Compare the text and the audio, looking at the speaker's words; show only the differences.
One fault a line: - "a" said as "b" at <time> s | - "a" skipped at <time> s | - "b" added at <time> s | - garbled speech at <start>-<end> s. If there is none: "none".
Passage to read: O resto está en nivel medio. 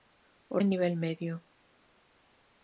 - "resto está" skipped at 0.6 s